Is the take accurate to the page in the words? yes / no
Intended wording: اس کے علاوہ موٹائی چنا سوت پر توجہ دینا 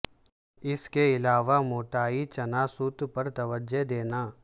yes